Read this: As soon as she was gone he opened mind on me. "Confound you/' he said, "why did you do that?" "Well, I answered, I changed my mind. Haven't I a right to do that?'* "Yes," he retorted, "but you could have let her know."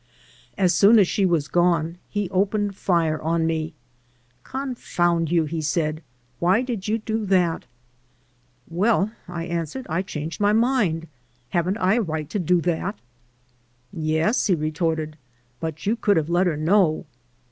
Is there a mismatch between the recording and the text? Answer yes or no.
yes